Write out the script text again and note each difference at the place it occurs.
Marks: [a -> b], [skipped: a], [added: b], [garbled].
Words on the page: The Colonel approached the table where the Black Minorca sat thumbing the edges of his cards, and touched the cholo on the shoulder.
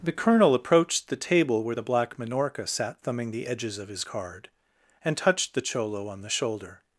The Colonel approached the table where the Black Minorca sat thumbing the edges of his [cards, -> card] and touched the cholo on the shoulder.